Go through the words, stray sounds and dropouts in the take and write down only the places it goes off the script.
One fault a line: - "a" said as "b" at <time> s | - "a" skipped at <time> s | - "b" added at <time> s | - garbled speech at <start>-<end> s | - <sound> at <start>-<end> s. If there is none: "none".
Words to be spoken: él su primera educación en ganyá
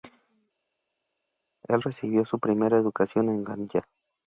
- "recibió" added at 1.8 s